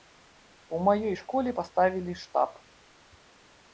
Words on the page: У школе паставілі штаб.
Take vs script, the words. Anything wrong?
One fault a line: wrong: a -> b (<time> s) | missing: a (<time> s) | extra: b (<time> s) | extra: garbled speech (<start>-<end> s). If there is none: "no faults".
extra: маёй (0.9 s)